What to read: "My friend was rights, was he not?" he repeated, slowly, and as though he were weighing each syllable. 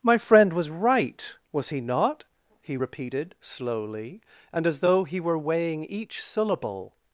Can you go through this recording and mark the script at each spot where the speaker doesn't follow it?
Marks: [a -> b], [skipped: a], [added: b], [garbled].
"My friend was [rights, -> right] was he not?" he repeated, slowly, and as though he were weighing each syllable.